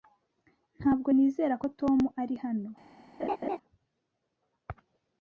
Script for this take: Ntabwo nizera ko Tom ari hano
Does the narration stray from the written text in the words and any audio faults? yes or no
yes